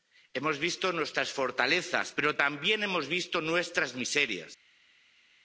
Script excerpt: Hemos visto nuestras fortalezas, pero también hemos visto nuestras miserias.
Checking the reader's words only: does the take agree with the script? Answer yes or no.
yes